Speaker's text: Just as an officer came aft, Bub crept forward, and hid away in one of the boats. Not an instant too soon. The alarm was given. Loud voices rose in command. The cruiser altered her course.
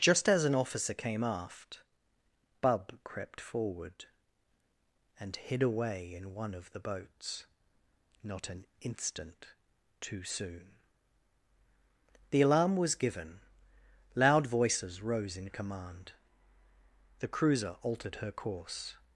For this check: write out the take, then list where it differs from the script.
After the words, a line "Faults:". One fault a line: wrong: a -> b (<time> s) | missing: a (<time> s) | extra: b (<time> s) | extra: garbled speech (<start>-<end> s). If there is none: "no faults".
Just as an officer came aft, Bub crept forward, and hid away in one of the boats. Not an instant too soon. The alarm was given. Loud voices rose in command. The cruiser altered her course.
Faults:
no faults